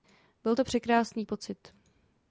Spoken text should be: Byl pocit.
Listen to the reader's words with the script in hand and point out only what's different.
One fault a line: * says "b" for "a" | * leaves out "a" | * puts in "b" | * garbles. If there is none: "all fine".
* puts in "to překrásný"